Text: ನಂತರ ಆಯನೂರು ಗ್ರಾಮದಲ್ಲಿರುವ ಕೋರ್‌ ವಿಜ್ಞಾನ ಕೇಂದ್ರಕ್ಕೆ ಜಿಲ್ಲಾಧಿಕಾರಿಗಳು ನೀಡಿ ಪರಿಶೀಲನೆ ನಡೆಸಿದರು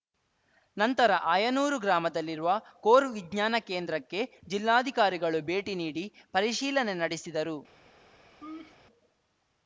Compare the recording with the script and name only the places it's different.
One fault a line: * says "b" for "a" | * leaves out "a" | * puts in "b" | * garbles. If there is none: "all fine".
* puts in "ಭೇಟಿ"